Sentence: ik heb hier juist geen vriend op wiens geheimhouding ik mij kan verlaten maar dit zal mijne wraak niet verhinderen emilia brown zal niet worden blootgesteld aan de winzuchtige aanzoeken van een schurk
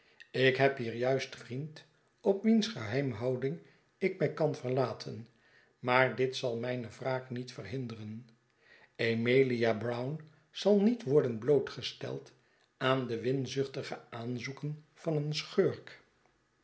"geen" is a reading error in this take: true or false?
true